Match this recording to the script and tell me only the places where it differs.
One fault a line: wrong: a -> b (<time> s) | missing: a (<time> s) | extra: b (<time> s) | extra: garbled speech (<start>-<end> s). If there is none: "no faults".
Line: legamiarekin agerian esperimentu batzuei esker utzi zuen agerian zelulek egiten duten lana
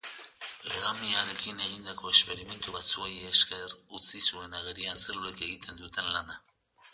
wrong: agerian -> egindako (1.6 s)